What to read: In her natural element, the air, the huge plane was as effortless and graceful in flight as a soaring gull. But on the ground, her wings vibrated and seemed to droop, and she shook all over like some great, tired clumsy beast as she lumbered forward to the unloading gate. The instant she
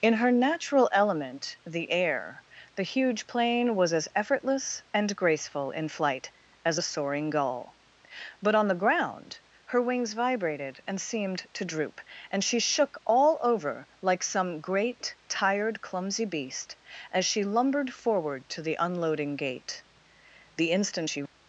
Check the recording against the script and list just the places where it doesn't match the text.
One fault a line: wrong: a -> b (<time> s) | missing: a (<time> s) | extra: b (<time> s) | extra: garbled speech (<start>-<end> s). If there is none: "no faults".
no faults